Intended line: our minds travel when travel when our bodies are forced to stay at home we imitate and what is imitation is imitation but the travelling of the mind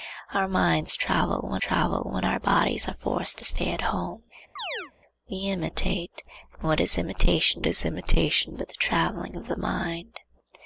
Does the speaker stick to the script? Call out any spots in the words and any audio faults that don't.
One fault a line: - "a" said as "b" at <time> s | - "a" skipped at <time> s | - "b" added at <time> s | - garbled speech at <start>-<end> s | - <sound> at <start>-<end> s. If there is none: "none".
- chirp at 4.6-4.9 s